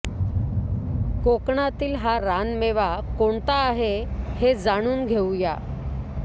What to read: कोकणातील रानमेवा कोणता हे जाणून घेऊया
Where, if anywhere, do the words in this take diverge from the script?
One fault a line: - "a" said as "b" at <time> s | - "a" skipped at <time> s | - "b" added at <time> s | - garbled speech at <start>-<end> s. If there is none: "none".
- "हा" added at 1.9 s
- "आहे" added at 3.6 s